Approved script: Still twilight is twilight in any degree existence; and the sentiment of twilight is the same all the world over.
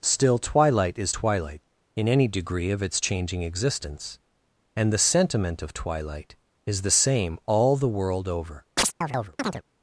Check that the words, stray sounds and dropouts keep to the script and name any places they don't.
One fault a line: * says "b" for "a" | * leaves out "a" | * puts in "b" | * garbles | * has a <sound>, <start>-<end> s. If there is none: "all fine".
* puts in "of its changing"
* has a chirp, 8.8-9.6 s